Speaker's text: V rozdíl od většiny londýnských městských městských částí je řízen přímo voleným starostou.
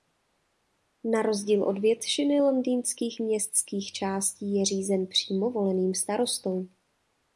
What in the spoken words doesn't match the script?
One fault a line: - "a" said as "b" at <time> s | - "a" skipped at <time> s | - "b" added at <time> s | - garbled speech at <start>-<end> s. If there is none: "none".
- "V" said as "Na" at 1.0 s
- "městských" skipped at 3.9 s